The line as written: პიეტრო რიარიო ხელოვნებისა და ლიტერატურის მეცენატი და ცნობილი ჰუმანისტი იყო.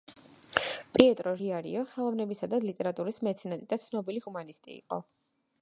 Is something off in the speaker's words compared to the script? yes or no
no